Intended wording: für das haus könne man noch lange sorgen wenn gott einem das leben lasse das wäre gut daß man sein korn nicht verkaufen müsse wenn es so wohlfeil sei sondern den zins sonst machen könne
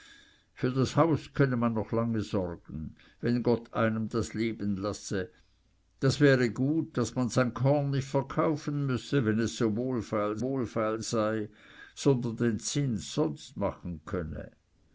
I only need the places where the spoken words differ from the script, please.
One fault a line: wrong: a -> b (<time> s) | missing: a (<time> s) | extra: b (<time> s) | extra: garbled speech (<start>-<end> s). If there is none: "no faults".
extra: wohlfeil (10.4 s)